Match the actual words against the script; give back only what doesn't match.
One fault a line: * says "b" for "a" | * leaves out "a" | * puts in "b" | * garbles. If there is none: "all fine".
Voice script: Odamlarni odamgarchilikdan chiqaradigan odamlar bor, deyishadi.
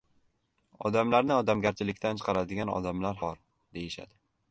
all fine